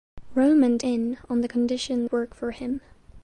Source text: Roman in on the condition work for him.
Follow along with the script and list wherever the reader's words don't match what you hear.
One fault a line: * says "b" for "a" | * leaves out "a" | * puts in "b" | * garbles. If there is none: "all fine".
all fine